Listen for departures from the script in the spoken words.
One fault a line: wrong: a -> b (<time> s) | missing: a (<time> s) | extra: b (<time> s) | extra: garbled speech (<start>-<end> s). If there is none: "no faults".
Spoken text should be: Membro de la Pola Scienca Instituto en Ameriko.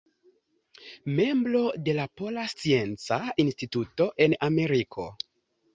no faults